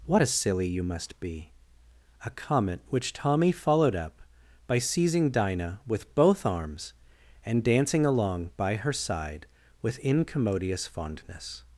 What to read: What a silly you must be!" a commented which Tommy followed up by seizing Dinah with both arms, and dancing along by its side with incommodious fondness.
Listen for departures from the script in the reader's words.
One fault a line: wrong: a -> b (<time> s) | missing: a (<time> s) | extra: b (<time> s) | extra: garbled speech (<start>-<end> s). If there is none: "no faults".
wrong: commented -> comment (2.3 s)
wrong: its -> her (8.8 s)